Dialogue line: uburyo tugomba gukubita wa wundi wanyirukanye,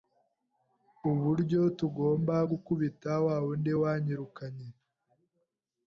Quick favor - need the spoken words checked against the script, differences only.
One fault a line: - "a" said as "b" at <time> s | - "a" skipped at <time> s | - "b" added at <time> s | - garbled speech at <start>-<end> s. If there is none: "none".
none